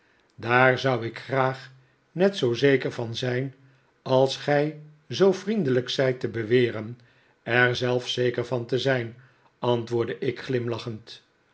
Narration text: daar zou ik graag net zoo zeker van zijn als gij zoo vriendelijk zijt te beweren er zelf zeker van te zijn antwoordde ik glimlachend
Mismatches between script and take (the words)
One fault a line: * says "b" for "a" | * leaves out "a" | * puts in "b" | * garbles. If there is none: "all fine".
all fine